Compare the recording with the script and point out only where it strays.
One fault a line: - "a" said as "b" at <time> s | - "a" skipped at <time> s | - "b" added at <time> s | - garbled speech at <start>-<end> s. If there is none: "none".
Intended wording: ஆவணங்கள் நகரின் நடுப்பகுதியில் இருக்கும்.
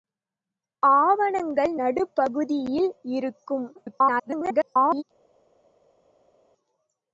- "நகரின்" skipped at 1.7 s
- garbled speech at 3.8-5.0 s